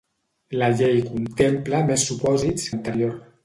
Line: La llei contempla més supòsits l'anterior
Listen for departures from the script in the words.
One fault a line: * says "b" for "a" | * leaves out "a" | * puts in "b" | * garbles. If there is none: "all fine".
all fine